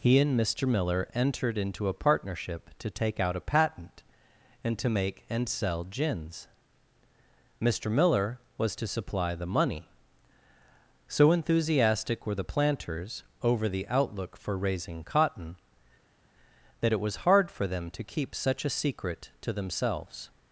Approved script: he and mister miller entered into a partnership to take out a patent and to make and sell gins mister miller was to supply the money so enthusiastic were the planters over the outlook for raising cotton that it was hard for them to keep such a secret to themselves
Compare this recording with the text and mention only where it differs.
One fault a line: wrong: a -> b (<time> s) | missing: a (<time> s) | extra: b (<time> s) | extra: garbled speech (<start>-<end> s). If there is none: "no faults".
no faults